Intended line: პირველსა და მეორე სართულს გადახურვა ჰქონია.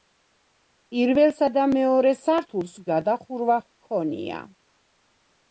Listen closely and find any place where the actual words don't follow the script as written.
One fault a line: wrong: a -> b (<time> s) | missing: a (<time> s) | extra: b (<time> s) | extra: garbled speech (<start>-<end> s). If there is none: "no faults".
no faults